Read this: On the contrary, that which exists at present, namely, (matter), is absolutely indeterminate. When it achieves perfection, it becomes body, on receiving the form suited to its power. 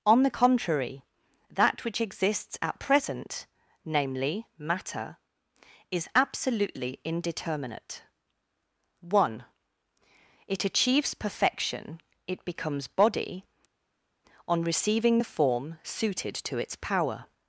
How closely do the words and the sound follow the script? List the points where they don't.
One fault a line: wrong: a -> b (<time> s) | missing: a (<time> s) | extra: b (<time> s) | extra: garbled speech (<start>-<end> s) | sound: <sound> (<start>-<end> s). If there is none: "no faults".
wrong: When -> One (9.0 s)